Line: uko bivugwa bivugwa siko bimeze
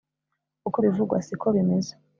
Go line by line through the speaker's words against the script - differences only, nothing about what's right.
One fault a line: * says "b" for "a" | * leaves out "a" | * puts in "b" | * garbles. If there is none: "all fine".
* leaves out "bivugwa"